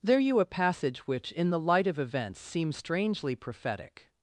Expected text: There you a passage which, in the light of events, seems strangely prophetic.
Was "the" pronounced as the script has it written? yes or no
yes